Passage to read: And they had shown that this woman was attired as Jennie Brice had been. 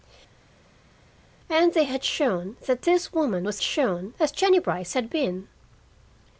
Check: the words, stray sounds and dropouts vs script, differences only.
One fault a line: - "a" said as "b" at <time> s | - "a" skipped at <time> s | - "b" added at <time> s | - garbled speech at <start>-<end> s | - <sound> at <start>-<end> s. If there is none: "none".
- "attired" said as "shown" at 3.6 s